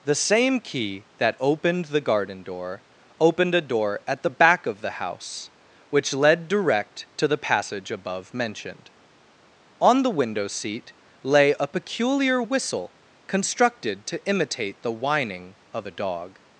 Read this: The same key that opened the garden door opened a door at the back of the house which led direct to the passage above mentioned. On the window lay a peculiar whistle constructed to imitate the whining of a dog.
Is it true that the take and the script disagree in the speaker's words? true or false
true